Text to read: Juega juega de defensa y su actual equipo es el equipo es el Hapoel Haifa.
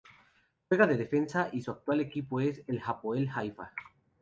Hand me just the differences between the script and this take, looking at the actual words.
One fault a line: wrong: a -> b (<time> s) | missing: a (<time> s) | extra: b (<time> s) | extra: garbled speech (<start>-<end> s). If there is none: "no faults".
missing: juega (0.9 s)
missing: equipo es el (2.8 s)